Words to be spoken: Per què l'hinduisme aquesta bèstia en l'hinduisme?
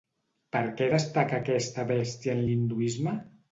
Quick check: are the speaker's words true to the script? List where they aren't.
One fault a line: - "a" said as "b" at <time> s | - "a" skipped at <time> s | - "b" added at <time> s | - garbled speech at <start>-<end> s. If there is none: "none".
- "l'hinduisme" said as "destaca" at 0.9 s